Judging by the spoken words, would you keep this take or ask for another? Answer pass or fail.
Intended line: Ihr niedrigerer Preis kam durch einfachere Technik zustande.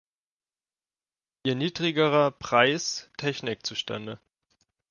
fail